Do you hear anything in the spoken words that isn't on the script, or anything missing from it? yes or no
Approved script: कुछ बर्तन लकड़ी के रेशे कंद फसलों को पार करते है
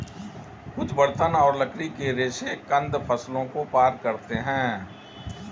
yes